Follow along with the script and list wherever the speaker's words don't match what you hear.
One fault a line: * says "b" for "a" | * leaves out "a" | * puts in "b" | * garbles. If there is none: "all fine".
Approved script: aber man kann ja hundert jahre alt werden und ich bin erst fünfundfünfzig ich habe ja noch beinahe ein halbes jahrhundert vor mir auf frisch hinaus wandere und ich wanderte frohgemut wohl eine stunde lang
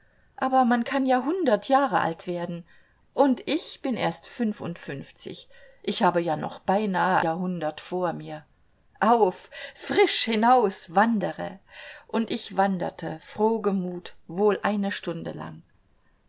* leaves out "ein halbes"